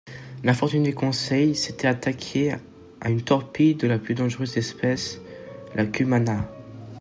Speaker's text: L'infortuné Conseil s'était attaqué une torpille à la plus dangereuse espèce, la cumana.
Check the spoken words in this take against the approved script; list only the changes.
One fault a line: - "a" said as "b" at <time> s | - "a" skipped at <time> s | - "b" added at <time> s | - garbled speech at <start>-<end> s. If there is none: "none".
- "à" added at 3.0 s
- "à" said as "de" at 3.7 s